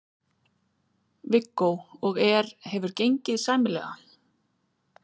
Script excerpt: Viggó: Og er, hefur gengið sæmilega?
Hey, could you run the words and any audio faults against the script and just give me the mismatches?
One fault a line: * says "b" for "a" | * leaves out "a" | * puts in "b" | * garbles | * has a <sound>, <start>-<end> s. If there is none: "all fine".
all fine